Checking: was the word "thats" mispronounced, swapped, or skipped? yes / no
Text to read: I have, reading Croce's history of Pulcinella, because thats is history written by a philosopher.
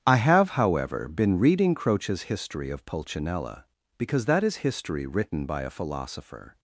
yes